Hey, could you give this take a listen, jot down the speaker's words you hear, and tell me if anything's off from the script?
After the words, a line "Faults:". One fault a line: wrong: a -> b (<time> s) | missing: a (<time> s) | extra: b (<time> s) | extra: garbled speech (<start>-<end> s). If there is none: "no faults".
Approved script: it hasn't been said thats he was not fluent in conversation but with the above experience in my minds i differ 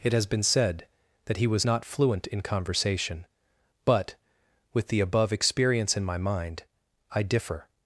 it has been said that he was not fluent in conversation but with the above experience in my mind i differ
Faults:
wrong: hasn't -> has (0.1 s)
wrong: thats -> that (1.2 s)
wrong: minds -> mind (6.2 s)